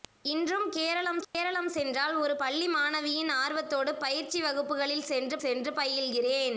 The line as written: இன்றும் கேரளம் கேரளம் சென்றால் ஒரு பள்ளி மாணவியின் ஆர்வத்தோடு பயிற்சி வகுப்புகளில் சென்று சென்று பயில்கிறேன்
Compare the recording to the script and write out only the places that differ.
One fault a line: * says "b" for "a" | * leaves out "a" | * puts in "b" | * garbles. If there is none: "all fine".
all fine